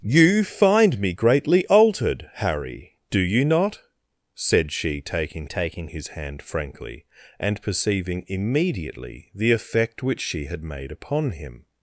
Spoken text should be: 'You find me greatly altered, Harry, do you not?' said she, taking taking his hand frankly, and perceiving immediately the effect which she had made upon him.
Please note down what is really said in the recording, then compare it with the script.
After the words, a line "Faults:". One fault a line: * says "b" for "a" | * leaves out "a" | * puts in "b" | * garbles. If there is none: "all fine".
'You find me greatly altered, Harry, do you not?' said she, taking taking his hand frankly, and perceiving immediately the effect which she had made upon him.
Faults:
all fine